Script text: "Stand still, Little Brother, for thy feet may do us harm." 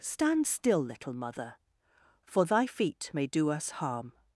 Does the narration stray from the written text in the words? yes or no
yes